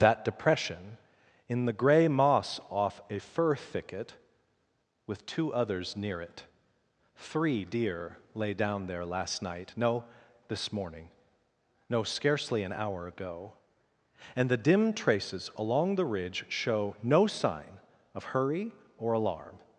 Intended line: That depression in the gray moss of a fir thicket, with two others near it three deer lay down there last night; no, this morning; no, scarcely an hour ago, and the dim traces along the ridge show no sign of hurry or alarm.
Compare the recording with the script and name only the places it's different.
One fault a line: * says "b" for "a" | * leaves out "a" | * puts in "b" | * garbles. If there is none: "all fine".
* says "off" for "of"